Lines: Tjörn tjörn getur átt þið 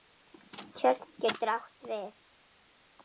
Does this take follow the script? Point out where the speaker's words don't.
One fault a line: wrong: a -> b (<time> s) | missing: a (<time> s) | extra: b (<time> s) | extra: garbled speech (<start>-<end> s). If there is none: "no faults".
missing: tjörn (1.1 s)
wrong: þið -> við (1.9 s)